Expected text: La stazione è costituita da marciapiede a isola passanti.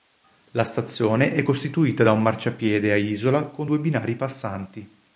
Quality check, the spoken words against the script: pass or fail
fail